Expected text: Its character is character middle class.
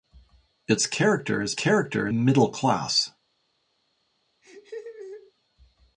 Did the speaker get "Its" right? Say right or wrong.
right